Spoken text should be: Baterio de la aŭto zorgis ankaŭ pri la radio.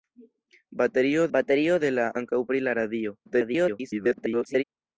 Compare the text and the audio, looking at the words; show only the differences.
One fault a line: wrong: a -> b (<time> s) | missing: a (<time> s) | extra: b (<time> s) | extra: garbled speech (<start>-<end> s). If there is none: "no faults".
extra: baterio (1.4 s)
missing: aŭto zorgis (2.1 s)
extra: garbled speech (3.3-4.6 s)